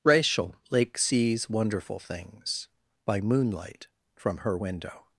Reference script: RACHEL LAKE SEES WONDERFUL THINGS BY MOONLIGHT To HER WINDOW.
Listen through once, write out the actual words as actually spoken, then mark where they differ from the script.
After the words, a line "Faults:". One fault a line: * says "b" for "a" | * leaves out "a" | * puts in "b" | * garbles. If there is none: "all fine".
RACHEL LAKE SEES WONDERFUL THINGS BY MOONLIGHT FROM HER WINDOW.
Faults:
* says "FROM" for "To"